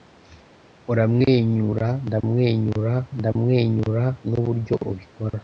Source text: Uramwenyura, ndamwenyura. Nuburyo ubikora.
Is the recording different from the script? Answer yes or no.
yes